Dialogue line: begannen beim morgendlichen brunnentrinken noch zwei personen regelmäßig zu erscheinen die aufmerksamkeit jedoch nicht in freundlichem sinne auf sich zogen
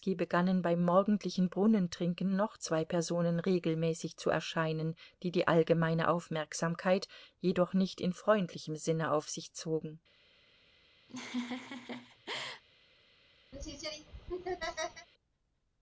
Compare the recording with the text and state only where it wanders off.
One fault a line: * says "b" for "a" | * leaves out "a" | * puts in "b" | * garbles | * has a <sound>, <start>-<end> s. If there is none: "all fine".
* puts in "die allgemeine"
* has a laugh, 11.1-12.6 s
* has a laugh, 13.5-15.1 s